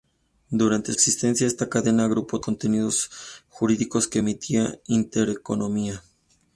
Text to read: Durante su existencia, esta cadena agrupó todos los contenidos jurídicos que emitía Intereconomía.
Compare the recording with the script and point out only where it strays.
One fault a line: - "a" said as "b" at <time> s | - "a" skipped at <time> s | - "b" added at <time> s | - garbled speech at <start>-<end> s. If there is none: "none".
- "su" skipped at 0.9 s
- "todos los" skipped at 2.4 s